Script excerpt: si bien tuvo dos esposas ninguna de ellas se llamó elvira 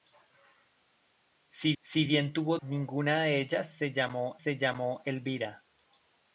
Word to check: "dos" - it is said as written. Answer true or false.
false